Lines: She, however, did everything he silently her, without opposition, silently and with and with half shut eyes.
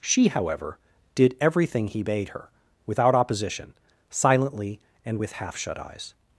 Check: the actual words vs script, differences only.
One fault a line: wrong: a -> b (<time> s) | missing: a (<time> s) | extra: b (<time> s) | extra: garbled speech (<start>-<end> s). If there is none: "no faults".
wrong: silently -> bade (2.0 s)
missing: and with (5.3 s)